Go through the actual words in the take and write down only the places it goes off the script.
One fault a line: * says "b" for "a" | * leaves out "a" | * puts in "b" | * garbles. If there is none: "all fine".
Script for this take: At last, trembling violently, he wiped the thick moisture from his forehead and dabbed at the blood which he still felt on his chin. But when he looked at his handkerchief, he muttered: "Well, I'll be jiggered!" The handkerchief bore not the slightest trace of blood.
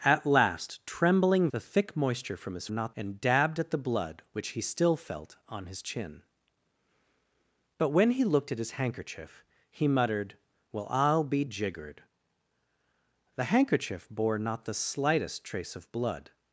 * leaves out "violently he wiped"
* says "not" for "forehead"